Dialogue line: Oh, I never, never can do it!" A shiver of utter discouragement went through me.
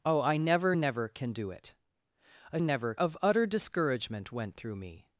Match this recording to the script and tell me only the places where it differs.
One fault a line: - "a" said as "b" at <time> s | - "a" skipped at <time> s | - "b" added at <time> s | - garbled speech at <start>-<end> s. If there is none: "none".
- "shiver" said as "never" at 2.6 s